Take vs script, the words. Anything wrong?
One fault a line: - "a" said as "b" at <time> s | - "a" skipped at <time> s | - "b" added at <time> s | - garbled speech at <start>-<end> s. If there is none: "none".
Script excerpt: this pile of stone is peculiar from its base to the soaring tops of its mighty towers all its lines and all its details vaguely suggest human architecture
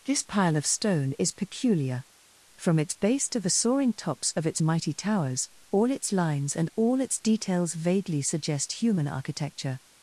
none